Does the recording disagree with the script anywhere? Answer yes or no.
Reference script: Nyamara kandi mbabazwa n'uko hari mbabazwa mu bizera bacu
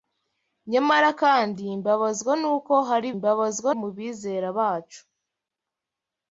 no